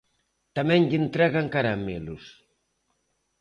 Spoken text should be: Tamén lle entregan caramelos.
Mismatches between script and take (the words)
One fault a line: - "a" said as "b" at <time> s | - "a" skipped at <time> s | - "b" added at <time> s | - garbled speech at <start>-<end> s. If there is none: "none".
none